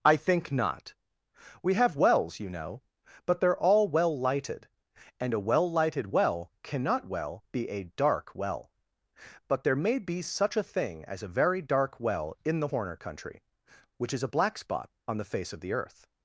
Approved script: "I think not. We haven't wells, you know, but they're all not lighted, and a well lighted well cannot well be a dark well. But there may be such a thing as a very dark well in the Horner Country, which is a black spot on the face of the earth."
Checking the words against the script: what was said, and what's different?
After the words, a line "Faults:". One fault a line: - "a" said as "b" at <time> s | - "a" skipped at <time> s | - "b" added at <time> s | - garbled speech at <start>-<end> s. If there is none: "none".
"I think not. We have wells, you know, but they're all well lighted, and a well lighted well cannot well be a dark well. But there may be such a thing as a very dark well in the Horner Country, which is a black spot on the face of the earth."
Faults:
- "haven't" said as "have" at 1.7 s
- "not" said as "well" at 3.9 s